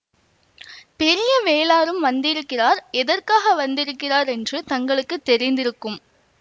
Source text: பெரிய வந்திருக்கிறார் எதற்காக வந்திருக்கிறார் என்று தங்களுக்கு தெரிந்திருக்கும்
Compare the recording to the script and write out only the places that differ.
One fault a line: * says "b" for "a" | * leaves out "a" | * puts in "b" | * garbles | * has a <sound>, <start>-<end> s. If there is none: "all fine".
* puts in "வேளாரும்"